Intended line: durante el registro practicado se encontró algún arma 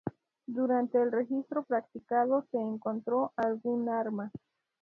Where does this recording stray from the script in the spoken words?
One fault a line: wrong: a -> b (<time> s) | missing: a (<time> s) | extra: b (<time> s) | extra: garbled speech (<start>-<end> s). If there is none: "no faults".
no faults